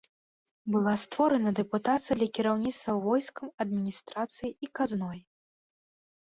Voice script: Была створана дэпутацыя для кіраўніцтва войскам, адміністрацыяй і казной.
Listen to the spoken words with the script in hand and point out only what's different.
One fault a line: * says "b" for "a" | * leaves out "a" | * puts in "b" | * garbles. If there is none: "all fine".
all fine